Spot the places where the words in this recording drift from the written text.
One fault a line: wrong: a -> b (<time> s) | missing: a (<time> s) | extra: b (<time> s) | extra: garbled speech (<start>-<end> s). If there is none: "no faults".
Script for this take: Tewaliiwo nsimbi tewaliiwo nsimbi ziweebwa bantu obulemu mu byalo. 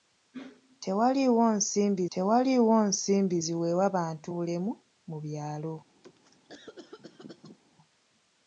no faults